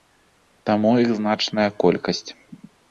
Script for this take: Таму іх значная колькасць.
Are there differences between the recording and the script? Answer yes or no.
no